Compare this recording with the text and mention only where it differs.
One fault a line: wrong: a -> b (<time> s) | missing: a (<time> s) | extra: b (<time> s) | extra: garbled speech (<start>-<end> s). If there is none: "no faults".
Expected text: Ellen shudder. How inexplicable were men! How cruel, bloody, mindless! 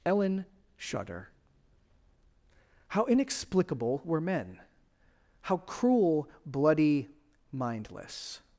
no faults